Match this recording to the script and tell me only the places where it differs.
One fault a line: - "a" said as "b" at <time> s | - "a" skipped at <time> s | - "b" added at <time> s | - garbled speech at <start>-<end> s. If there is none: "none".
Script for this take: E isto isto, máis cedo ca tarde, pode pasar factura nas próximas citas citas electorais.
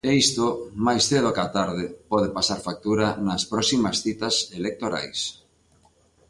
- "isto" skipped at 0.5 s
- "citas" skipped at 4.3 s